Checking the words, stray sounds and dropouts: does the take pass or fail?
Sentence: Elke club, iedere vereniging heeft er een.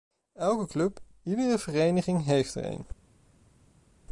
pass